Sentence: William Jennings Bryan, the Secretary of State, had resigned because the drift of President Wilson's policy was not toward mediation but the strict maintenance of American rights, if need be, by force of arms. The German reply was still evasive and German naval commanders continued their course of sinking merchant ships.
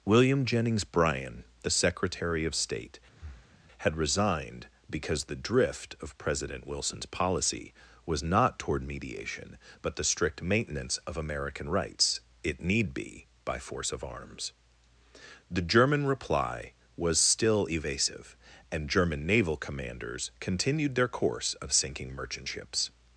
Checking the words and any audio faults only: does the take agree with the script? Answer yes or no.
no